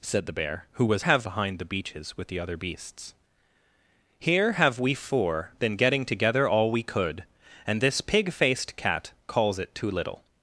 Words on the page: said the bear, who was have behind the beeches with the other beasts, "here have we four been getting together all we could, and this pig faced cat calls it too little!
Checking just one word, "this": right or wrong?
right